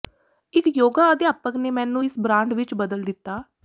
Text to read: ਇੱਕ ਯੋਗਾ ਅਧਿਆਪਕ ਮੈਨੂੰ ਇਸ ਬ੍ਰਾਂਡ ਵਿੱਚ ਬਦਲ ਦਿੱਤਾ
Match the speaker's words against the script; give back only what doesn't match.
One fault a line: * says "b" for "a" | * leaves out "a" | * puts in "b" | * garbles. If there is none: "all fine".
* puts in "ਨੇ"